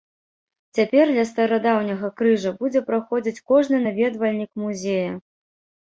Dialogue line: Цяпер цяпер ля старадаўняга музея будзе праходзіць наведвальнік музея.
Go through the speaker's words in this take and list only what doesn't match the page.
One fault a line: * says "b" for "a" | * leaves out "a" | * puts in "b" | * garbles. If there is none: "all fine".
* leaves out "цяпер"
* says "крыжа" for "музея"
* puts in "кожны"